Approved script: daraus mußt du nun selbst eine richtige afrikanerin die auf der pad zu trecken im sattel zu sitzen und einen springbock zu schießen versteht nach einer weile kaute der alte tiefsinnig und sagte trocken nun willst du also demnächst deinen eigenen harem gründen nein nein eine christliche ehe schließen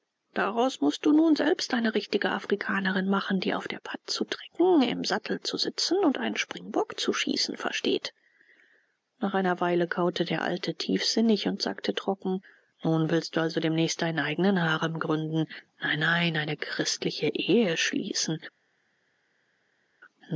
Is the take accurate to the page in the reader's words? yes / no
no